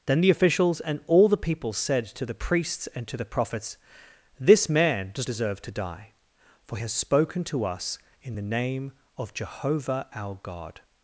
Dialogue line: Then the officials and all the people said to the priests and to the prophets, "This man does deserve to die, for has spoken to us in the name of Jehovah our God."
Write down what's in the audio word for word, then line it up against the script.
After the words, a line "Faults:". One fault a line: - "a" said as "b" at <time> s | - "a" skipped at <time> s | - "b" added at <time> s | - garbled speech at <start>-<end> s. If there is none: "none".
Then the officials and all the people said to the priests and to the prophets, "This man does deserve to die, for has spoken to us in the name of Jehovah our God."
Faults:
none